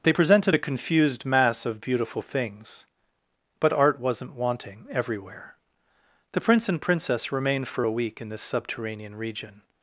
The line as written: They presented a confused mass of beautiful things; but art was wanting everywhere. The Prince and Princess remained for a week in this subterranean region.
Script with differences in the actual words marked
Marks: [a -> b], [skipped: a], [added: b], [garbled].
They presented a confused mass of beautiful things; but art [was -> wasn't] wanting everywhere. The Prince and Princess remained for a week in this subterranean region.